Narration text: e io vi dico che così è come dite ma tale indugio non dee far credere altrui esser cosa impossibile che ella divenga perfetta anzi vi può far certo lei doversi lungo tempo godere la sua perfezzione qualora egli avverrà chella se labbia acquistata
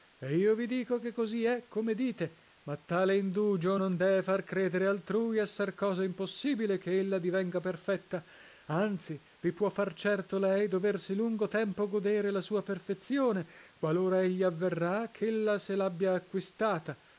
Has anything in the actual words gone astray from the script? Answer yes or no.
no